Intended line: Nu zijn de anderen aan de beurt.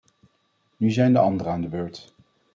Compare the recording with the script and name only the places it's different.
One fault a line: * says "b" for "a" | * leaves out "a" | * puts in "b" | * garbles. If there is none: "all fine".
all fine